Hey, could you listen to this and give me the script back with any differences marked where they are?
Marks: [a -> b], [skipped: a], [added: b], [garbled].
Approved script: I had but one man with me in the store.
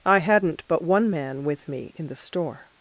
I [had -> hadn't] but one man with me in the store.